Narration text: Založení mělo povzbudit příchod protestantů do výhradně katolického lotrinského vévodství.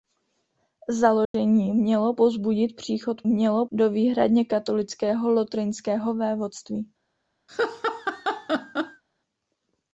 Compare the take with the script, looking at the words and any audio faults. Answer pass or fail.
fail